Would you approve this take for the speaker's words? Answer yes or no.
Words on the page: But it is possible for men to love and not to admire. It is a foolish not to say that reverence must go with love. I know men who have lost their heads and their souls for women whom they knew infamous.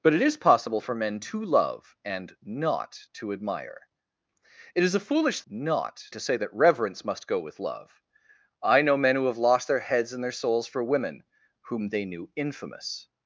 yes